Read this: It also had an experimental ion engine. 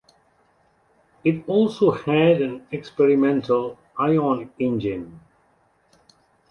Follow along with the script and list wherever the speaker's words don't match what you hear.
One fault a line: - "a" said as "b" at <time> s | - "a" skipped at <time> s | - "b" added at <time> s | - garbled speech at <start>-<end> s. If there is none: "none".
none